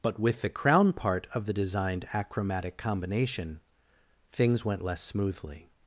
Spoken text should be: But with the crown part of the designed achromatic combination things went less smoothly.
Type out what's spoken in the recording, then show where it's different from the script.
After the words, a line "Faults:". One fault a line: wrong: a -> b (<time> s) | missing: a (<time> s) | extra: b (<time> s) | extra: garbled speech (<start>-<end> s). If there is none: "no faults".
But with the crown part of the designed achromatic combination things went less smoothly.
Faults:
no faults